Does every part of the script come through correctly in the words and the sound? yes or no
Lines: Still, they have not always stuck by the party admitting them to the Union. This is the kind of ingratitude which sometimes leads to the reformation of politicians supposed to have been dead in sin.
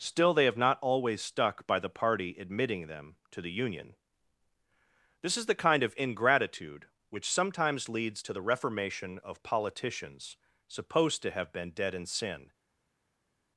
yes